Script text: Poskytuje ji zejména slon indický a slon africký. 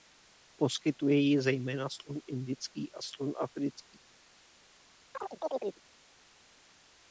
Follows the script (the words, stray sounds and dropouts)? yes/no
no